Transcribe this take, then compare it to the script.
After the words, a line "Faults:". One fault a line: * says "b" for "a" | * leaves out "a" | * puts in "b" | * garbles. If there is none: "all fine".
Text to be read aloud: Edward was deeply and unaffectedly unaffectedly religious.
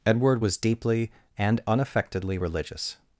Edward was deeply and unaffectedly religious.
Faults:
* leaves out "unaffectedly"